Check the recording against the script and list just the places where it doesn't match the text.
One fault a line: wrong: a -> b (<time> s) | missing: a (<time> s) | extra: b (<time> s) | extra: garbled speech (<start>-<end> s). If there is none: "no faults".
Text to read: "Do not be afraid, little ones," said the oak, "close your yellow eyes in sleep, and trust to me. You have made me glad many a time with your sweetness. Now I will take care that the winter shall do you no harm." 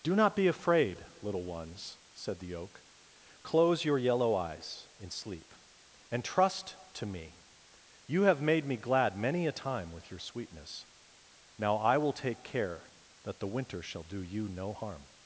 no faults